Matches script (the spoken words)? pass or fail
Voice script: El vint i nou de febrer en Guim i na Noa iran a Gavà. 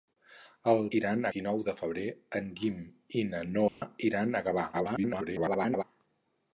fail